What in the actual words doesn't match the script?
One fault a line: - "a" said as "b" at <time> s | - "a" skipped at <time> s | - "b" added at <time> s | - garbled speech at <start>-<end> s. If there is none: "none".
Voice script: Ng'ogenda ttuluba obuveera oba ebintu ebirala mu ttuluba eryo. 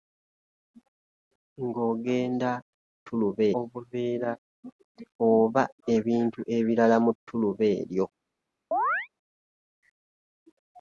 none